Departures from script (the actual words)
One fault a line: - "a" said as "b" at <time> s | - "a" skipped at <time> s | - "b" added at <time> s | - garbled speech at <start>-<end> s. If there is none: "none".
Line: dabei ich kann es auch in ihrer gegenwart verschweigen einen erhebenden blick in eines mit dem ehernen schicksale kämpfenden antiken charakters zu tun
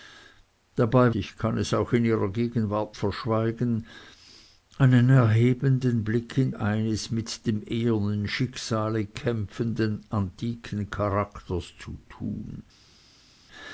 none